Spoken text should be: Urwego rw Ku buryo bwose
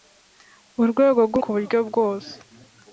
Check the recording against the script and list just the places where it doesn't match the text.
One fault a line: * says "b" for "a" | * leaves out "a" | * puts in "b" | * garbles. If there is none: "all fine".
all fine